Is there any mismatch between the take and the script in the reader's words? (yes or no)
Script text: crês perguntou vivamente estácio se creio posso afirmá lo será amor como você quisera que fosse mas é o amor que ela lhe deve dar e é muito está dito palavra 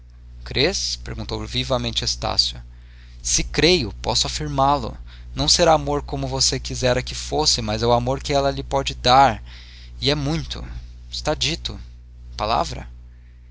yes